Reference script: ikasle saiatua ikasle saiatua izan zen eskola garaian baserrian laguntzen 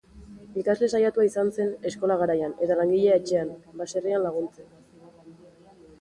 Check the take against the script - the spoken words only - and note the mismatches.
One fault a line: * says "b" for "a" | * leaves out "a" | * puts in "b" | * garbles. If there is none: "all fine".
* leaves out "ikasle saiatua"
* puts in "eta langilea etxean"